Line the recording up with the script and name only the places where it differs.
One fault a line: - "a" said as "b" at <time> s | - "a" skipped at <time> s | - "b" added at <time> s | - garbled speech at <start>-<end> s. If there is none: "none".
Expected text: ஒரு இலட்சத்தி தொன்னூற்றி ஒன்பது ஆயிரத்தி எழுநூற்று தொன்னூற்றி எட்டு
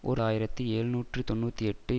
- "இலட்சத்தி தொன்னூற்றி ஒன்பது" skipped at 0.2 s